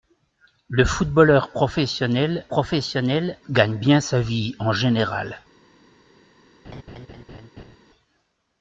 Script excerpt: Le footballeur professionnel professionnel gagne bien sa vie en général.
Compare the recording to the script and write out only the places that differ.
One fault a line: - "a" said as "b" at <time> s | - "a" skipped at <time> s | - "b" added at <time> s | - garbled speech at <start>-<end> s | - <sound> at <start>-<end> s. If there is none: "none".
- laugh at 6.6-7.8 s